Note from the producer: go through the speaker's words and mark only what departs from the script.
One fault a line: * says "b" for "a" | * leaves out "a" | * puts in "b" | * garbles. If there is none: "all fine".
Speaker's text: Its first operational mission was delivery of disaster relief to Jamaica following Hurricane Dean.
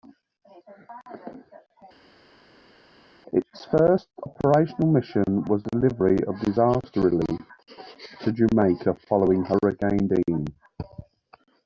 all fine